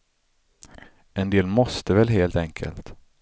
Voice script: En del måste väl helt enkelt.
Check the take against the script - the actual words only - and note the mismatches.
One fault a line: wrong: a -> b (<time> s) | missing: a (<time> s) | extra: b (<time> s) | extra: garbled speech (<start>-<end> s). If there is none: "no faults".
no faults